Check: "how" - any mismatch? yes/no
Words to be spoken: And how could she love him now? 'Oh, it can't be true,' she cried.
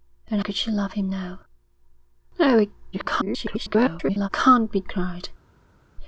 yes